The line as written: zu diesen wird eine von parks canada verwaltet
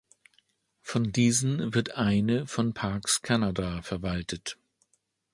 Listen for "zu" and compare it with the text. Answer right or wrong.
wrong